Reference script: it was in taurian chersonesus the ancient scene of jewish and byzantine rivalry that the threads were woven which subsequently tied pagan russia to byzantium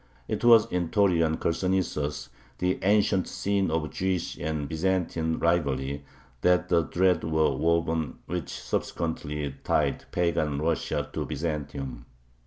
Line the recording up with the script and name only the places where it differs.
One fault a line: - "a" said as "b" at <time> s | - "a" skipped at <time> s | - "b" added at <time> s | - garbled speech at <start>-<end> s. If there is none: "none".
none